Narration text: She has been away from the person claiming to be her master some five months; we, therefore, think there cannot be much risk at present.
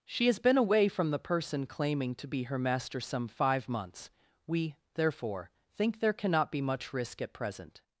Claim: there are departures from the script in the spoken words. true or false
false